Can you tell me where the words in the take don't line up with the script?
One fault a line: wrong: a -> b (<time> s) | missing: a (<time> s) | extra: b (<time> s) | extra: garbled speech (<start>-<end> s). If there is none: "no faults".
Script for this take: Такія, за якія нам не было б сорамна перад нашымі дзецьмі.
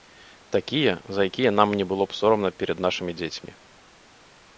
no faults